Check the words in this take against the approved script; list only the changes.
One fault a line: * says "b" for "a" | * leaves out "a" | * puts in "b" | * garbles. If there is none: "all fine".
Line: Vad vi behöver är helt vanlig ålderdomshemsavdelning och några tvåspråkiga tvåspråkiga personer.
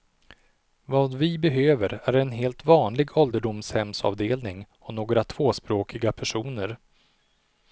* puts in "en"
* leaves out "tvåspråkiga"